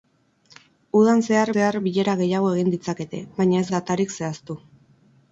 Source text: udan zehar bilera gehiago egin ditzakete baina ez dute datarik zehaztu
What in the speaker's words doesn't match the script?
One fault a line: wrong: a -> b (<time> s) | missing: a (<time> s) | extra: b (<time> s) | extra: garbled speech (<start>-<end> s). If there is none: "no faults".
extra: zehar (1.5 s)
missing: dute (3.7 s)